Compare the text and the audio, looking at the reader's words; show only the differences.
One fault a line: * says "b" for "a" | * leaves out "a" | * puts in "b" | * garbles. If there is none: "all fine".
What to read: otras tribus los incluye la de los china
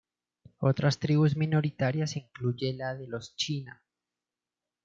* says "minoritarias" for "los"